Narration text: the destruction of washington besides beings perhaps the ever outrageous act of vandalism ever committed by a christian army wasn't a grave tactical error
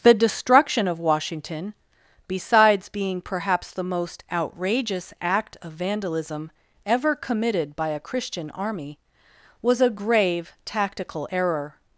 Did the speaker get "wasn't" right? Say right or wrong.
wrong